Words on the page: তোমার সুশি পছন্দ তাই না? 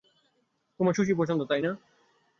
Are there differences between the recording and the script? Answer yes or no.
no